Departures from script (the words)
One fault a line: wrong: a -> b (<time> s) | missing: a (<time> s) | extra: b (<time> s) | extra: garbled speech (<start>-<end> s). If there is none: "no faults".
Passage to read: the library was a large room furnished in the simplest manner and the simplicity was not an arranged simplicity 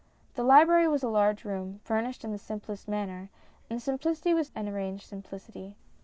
missing: not (4.5 s)